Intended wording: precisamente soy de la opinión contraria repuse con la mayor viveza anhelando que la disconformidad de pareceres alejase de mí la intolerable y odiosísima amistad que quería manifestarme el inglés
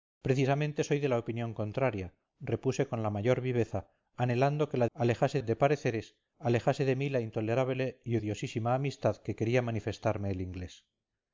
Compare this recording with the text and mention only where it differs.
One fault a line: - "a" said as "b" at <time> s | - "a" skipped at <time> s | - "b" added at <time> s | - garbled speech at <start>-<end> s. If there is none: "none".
- "disconformidad" said as "alejase" at 5.0 s